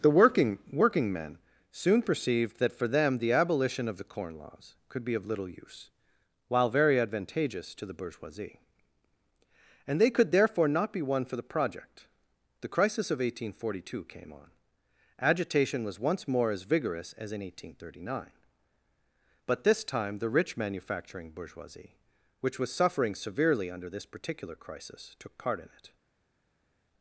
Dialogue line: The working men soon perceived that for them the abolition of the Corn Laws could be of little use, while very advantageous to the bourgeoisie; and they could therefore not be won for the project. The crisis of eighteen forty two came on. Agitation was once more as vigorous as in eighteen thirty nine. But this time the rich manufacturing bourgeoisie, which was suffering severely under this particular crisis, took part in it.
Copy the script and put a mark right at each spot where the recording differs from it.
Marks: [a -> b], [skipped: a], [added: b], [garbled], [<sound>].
The working [added: working] men soon perceived that for them the abolition of the Corn Laws could be of little use, while very advantageous to the bourgeoisie; and they could therefore not be won for the project. The crisis of eighteen forty two came on. Agitation was once more as vigorous as in eighteen thirty nine. But this time the rich manufacturing bourgeoisie, which was suffering severely under this particular crisis, took part in it.